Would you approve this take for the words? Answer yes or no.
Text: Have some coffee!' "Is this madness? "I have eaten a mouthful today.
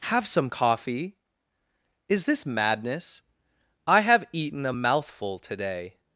yes